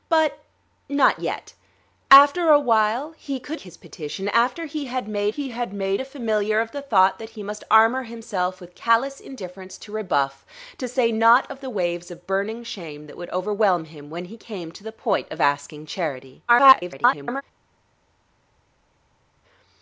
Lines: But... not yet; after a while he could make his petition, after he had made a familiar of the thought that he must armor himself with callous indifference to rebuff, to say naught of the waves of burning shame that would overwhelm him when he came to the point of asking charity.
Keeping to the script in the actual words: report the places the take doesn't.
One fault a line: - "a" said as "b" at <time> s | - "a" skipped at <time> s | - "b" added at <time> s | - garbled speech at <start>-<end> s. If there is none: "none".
- "make" skipped at 3.6 s
- "he had made" added at 5.3 s
- garbled speech at 16.5-17.4 s